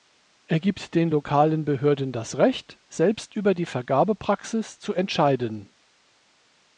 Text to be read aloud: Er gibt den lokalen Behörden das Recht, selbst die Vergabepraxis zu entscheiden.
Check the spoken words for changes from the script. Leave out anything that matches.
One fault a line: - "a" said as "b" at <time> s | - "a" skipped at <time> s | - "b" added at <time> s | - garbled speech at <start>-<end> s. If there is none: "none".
- "über" added at 3.4 s